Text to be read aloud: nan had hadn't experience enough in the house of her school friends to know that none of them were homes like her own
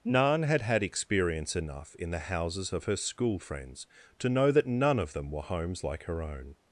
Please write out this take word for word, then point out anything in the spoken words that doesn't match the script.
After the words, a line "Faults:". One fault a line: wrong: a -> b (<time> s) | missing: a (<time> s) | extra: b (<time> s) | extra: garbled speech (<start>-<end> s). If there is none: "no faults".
nan had had experience enough in the houses of her school friends to know that none of them were homes like her own
Faults:
wrong: hadn't -> had (0.6 s)
wrong: house -> houses (2.2 s)